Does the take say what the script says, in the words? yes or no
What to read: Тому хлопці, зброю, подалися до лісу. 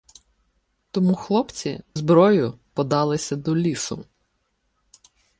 yes